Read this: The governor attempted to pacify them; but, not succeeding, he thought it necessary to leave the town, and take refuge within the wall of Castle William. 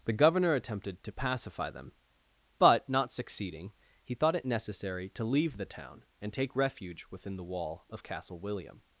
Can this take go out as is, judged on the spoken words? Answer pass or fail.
pass